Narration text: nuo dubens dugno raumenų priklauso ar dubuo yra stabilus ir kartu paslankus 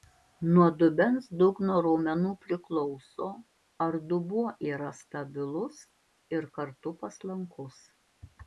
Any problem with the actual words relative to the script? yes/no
no